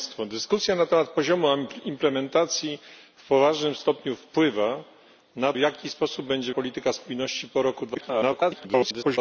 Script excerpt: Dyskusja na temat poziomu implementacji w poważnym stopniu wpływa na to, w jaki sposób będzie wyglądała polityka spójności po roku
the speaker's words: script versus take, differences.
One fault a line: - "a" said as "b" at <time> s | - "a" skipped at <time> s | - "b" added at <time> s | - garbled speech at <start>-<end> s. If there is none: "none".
- "to" skipped at 5.5 s
- "wyglądała" skipped at 6.5 s
- garbled speech at 7.9-9.2 s